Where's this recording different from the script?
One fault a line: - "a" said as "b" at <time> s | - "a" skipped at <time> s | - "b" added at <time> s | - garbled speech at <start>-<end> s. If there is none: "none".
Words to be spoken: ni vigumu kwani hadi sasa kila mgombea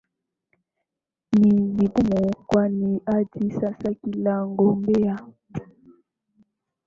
none